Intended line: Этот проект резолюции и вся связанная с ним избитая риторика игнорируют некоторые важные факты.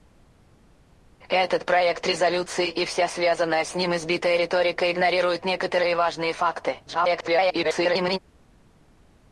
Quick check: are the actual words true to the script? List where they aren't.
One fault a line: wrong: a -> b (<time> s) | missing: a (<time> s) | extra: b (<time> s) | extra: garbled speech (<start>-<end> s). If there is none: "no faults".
extra: garbled speech (6.9-8.2 s)